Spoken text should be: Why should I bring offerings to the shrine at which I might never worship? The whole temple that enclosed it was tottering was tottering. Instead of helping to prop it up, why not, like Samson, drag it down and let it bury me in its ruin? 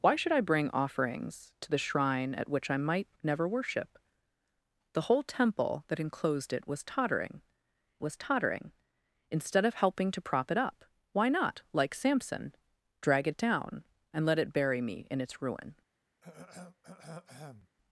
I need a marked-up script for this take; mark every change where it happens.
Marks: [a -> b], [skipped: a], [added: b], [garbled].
Why should I bring offerings to the shrine at which I might never worship? The whole temple that enclosed it was tottering was tottering. Instead of helping to prop it up, why not, like Samson, drag it down and let it bury me in its ruin?